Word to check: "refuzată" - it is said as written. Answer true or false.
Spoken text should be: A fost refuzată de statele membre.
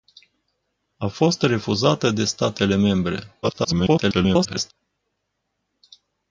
true